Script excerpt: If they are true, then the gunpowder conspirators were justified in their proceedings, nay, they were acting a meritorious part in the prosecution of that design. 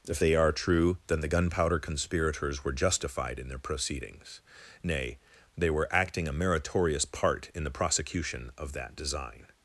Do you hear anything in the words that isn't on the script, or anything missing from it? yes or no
no